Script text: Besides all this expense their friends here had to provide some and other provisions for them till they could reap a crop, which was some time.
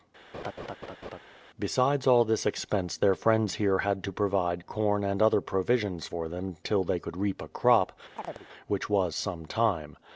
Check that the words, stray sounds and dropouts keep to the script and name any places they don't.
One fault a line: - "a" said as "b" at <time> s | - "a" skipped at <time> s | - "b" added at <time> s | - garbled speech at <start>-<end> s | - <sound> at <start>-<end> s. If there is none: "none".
- laugh at 0.3-1.2 s
- "some" said as "corn" at 4.7 s
- chirp at 8.2-8.5 s